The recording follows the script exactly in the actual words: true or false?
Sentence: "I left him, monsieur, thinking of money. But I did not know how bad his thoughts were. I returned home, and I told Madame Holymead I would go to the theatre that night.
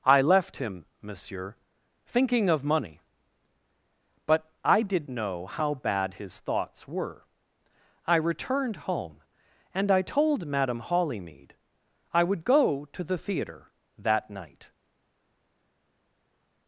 false